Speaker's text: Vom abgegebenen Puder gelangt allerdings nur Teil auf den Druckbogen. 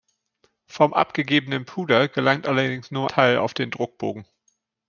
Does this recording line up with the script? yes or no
yes